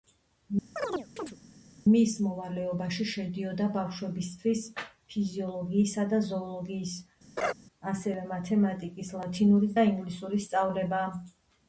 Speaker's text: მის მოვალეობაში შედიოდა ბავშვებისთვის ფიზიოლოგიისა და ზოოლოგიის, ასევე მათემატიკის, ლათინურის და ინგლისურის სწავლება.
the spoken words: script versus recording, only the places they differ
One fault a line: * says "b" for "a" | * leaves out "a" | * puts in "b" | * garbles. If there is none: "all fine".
all fine